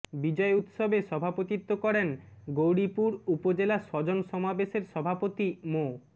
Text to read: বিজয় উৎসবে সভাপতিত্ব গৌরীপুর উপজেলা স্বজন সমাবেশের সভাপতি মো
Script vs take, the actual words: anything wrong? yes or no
yes